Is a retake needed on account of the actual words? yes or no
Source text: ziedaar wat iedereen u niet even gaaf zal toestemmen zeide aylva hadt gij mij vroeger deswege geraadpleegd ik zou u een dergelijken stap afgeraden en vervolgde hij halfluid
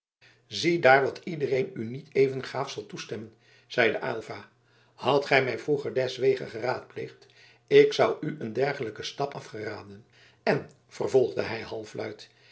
no